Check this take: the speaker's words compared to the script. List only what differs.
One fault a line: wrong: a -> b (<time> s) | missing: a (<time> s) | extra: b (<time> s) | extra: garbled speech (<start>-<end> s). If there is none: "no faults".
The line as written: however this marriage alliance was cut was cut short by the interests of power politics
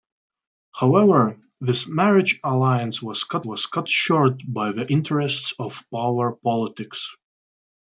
no faults